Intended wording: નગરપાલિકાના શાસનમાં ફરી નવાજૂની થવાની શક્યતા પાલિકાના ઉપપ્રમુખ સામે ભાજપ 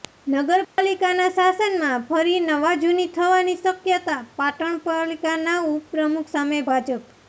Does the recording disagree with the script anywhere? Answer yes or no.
yes